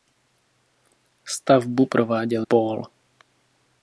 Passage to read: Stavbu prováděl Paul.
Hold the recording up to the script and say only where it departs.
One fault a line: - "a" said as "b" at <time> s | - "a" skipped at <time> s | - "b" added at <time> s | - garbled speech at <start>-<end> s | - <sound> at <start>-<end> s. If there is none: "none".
none